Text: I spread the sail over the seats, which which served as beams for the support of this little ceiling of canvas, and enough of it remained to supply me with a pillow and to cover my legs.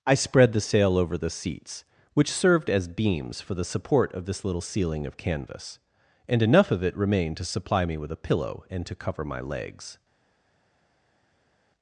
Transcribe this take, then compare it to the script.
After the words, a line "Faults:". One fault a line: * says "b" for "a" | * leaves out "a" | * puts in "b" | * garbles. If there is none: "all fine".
I spread the sail over the seats, which served as beams for the support of this little ceiling of canvas, and enough of it remained to supply me with a pillow and to cover my legs.
Faults:
* leaves out "which"